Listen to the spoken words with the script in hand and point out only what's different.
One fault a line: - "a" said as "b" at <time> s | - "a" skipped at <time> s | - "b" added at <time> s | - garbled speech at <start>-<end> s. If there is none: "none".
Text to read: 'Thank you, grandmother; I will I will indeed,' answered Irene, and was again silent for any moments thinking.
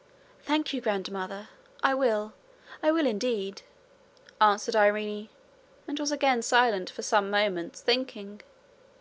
- "any" said as "some" at 7.0 s